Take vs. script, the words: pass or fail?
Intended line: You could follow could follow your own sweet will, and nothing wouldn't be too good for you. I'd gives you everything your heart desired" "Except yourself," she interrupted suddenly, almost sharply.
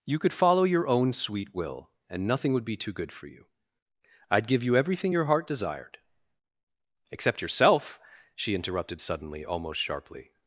fail